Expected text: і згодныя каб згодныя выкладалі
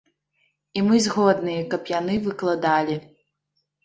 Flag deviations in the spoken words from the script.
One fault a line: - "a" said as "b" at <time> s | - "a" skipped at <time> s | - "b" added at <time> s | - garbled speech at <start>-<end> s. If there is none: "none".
- "мы" added at 0.8 s
- "згодныя" said as "яны" at 1.9 s